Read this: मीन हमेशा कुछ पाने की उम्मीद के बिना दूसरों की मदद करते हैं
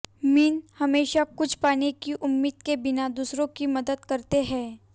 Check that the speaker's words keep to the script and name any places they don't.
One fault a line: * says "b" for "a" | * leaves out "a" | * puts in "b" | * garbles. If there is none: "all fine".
all fine